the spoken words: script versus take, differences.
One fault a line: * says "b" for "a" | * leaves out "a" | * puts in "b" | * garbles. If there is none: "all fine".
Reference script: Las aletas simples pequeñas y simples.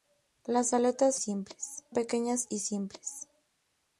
all fine